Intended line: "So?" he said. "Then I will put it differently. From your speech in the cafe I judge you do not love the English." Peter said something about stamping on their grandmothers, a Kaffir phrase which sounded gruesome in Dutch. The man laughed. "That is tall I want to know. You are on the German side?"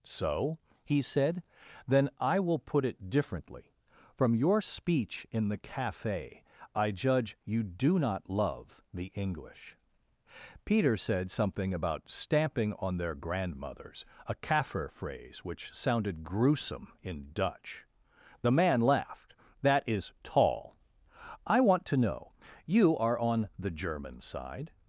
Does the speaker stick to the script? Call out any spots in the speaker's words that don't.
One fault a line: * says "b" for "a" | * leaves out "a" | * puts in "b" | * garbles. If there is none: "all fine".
all fine